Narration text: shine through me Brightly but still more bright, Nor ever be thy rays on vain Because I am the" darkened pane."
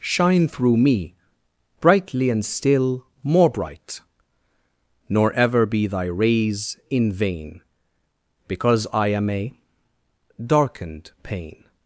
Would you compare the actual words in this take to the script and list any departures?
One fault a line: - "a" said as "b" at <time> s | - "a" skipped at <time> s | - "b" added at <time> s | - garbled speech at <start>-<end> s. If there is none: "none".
- "but" said as "and" at 2.3 s
- "on" said as "in" at 6.9 s
- "the" said as "a" at 9.3 s